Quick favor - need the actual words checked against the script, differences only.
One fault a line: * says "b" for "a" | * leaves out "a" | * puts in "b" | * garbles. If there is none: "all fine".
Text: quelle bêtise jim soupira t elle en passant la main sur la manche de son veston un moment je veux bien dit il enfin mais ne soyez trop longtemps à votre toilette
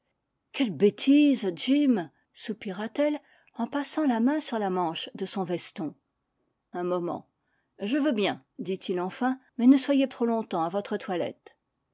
all fine